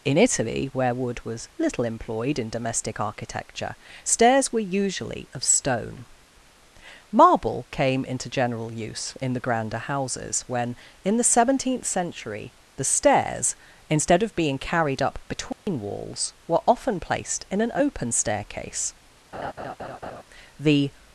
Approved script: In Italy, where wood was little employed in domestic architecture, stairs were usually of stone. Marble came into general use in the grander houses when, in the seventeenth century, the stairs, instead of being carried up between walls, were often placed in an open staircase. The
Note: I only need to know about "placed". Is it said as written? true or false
true